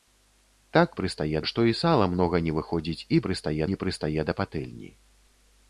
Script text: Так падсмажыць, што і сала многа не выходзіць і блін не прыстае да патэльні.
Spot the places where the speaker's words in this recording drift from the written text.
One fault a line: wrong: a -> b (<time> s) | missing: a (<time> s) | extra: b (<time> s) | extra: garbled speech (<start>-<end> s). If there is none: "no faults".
wrong: падсмажыць -> прыстае (1.0 s)
wrong: блін -> прыстае (3.3 s)